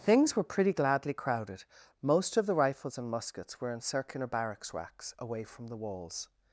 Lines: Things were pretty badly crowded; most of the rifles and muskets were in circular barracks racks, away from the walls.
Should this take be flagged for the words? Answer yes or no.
yes